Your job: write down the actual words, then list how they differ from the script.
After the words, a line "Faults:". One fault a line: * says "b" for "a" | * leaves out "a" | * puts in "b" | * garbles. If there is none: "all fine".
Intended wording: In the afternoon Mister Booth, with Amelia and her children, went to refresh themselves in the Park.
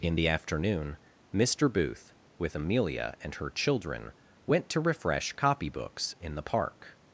In the afternoon Mister Booth, with Amelia and her children, went to refresh copybooks in the Park.
Faults:
* says "copybooks" for "themselves"